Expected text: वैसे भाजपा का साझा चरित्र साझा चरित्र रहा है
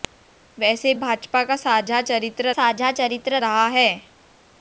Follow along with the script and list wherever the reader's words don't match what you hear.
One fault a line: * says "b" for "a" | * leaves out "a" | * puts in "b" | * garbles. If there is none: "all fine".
all fine